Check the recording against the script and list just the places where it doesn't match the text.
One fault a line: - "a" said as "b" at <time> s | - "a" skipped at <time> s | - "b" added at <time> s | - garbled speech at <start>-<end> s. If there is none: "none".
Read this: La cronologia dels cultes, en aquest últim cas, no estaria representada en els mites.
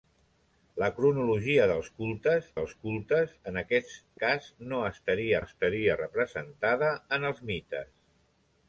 - "dels cultes" added at 2.6 s
- "últim" skipped at 3.9 s
- "estaria" added at 5.4 s